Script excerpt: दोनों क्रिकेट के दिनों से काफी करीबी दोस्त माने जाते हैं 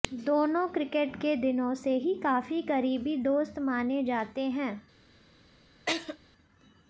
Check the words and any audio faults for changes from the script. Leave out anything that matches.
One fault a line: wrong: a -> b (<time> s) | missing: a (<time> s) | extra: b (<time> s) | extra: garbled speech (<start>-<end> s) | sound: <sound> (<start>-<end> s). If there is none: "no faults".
extra: ही (2.0 s)
sound: laugh (5.9-6.2 s)